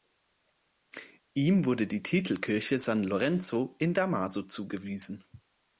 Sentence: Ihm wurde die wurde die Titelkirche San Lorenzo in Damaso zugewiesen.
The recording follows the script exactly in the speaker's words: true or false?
false